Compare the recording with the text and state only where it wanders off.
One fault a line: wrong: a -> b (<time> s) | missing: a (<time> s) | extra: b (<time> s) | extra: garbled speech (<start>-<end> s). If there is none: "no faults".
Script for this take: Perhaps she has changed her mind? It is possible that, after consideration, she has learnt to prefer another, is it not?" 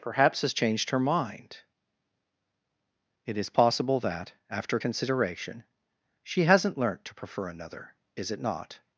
missing: she (0.4 s)
wrong: has -> hasn't (6.4 s)